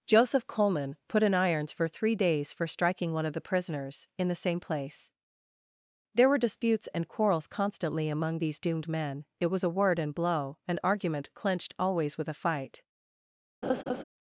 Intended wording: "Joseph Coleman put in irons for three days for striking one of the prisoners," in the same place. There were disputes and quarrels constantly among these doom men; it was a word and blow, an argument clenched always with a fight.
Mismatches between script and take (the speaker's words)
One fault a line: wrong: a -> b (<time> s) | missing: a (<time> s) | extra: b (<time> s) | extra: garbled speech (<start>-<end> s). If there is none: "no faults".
wrong: doom -> doomed (8.6 s)